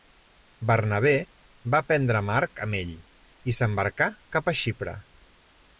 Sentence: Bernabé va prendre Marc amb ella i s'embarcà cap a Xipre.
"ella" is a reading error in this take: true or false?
true